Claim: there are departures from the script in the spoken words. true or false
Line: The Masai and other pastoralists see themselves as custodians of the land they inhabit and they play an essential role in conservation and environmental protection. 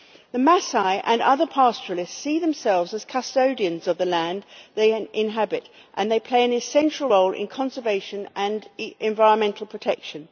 false